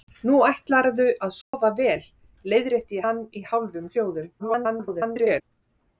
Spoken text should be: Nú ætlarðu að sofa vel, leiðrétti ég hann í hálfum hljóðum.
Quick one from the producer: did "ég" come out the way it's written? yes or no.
no